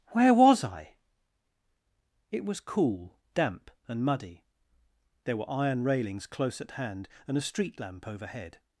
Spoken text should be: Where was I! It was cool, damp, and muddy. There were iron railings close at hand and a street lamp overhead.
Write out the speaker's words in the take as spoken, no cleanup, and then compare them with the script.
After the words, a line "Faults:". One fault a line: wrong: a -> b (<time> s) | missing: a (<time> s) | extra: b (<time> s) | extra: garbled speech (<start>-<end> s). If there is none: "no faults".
Where was I! It was cool, damp, and muddy. There were iron railings close at hand and a street lamp overhead.
Faults:
no faults